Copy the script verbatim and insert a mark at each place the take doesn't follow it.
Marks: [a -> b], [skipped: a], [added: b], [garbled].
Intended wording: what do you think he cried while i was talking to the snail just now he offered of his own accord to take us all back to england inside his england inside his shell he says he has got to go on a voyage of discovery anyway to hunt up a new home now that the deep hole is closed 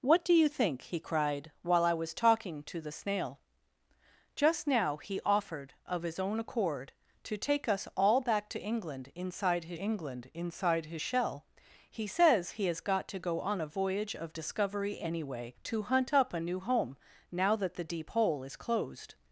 what do you think he cried while i was talking to the snail just now he offered of his own accord to take us all back to england inside his england inside his shell he says he has got to go on a voyage of discovery anyway to hunt up a new home now that the deep hole is closed